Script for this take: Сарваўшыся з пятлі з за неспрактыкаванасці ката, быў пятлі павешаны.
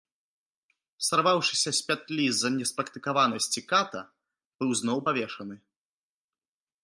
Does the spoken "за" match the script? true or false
true